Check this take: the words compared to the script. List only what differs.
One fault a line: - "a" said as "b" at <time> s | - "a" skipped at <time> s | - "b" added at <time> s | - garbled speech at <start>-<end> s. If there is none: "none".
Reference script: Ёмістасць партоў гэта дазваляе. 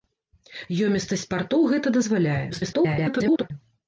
- garbled speech at 2.5-3.5 s